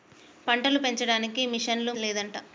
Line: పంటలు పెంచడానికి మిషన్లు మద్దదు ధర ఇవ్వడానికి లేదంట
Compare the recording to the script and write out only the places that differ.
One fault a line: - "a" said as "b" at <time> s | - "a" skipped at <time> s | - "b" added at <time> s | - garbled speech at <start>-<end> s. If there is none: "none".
- "మద్దదు ధర ఇవ్వడానికి" skipped at 1.9 s